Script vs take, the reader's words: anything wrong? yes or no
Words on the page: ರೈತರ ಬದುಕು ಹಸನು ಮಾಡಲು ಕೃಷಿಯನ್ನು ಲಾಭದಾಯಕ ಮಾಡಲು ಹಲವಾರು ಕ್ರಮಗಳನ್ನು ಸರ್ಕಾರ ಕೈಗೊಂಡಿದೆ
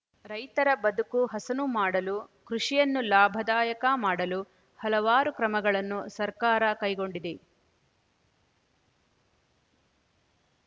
no